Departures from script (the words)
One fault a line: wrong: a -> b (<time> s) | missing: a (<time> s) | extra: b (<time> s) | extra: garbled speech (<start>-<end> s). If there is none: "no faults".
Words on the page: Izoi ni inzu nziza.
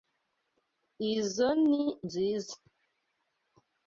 missing: inzu (1.8 s)